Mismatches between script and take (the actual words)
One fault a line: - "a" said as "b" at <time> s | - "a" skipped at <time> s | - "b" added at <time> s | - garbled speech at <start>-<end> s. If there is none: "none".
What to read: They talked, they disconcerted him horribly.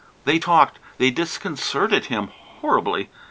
none